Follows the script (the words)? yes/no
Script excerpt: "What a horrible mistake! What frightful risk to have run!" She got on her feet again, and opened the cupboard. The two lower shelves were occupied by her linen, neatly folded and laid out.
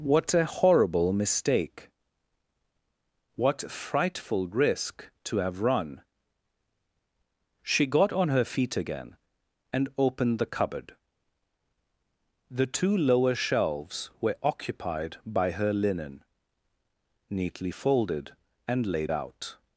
yes